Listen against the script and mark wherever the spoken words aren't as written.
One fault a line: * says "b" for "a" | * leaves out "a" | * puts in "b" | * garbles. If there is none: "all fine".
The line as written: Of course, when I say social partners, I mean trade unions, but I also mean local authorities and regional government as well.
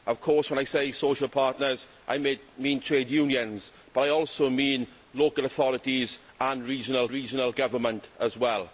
* puts in "regional"